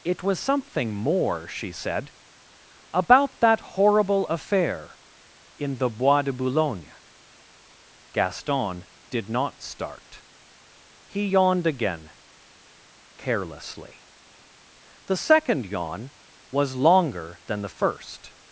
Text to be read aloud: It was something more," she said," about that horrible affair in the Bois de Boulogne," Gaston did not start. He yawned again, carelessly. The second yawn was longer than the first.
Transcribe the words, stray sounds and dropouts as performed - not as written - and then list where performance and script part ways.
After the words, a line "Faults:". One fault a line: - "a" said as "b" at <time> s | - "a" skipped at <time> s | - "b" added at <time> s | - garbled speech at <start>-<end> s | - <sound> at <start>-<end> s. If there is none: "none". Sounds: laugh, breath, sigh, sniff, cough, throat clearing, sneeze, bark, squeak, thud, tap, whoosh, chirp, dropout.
It was something more," she said," about that horrible affair in the Bois de Boulogne," Gaston did not start. He yawned again, carelessly. The second yawn was longer than the first.
Faults:
none